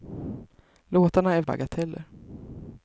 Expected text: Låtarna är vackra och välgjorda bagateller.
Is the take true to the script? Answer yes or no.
no